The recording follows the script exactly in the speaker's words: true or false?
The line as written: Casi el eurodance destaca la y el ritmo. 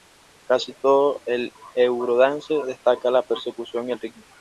false